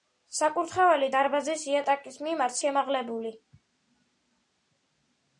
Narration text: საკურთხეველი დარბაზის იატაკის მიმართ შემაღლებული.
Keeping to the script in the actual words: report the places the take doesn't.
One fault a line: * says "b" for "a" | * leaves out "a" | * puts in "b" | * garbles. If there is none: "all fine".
all fine